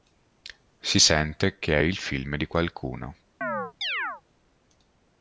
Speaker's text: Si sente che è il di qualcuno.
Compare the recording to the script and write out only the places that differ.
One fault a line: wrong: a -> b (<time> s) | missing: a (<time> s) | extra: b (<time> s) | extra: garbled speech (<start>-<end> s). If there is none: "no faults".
extra: film (2.0 s)